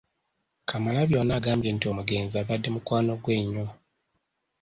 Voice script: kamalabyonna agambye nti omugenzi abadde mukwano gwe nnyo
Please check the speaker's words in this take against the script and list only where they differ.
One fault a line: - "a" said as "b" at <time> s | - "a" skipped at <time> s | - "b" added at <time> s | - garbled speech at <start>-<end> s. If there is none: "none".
none